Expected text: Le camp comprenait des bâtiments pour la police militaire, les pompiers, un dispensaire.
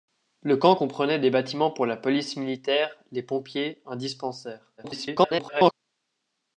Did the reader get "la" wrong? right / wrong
right